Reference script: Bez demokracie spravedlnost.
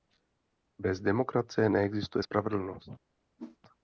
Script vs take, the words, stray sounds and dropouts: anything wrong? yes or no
yes